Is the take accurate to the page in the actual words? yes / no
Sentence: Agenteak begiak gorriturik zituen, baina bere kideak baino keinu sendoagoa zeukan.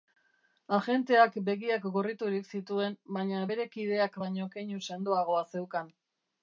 yes